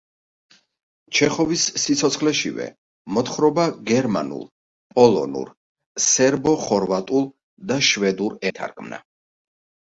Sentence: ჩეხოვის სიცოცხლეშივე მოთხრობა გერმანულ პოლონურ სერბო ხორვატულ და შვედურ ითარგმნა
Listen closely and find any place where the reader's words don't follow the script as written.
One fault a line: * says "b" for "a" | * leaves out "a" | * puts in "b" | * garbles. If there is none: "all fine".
all fine